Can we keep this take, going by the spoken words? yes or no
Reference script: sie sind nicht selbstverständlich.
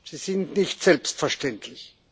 yes